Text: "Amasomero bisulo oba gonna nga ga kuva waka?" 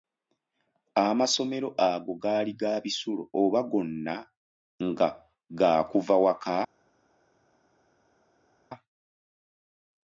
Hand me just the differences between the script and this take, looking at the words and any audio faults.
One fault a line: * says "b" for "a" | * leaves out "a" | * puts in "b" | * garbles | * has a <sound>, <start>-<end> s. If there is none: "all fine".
* puts in "ago gaali ga"